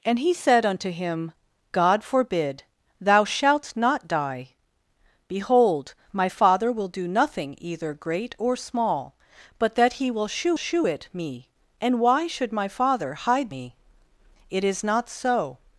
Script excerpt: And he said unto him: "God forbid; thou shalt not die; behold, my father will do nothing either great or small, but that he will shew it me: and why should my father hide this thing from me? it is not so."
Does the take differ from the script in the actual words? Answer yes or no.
yes